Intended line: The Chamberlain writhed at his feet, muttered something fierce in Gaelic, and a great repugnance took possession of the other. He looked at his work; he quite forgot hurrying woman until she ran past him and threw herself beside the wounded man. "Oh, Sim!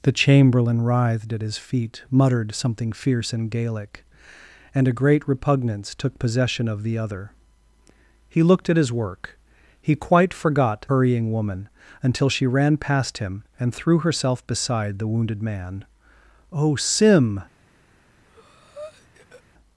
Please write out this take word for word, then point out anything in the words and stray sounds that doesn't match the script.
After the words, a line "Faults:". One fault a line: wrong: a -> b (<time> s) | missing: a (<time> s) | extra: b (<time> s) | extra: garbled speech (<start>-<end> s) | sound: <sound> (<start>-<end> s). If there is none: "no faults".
The Chamberlain writhed at his feet, muttered something fierce in Gaelic, and a great repugnance took possession of the other. He looked at his work; he quite forgot hurrying woman until she ran past him and threw herself beside the wounded man. "Oh, Sim!
Faults:
sound: breath (18.3-19.4 s)